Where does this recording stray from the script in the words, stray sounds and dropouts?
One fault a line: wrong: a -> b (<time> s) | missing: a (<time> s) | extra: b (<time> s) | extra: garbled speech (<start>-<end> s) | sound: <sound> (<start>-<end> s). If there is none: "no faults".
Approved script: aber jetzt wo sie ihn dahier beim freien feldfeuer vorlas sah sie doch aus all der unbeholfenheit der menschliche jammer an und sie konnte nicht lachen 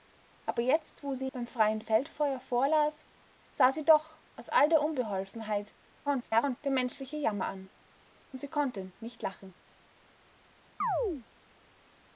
missing: ihn dahier (1.3 s)
extra: garbled speech (6.1-6.6 s)
sound: chirp (10.8-11.3 s)